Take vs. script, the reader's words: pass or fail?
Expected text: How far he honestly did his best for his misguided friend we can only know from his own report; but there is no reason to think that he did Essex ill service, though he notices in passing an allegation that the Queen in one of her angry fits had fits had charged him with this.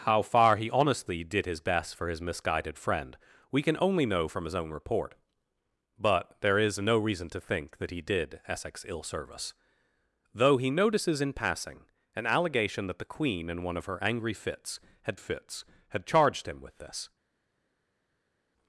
pass